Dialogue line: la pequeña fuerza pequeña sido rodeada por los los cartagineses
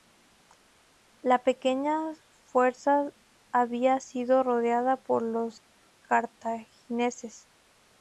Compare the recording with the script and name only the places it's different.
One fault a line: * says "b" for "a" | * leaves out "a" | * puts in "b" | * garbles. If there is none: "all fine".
* says "había" for "pequeña"
* leaves out "los"